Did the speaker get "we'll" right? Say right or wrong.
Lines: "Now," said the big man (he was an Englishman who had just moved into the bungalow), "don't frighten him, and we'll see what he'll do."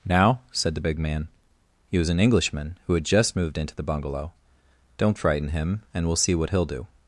right